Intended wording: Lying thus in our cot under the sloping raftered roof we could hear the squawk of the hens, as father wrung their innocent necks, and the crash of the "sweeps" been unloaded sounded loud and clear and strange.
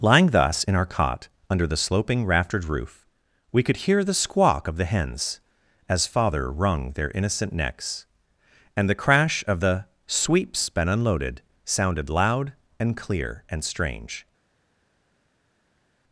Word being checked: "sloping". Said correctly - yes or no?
yes